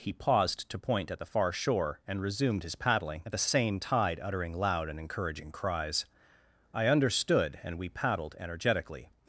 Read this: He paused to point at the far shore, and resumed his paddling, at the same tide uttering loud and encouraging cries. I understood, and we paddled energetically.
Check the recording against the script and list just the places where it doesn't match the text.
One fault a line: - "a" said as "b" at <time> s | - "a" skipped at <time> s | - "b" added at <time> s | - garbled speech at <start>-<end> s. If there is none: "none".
none